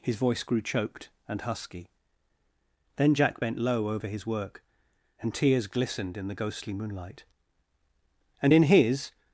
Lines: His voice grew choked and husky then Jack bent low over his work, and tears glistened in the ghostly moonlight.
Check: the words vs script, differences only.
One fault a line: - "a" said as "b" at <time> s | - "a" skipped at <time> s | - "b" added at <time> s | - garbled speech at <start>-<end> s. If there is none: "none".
- "And in his" added at 8.4 s